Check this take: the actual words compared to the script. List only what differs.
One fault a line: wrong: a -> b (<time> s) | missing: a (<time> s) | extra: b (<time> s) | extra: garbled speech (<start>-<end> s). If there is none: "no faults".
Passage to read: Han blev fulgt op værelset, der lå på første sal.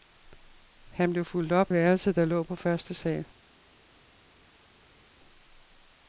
no faults